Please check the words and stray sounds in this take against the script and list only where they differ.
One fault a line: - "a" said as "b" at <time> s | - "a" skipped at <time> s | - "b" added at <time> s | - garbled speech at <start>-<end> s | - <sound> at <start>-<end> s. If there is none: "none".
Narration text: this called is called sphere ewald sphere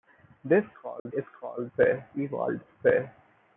- dropout at 1.0-1.1 s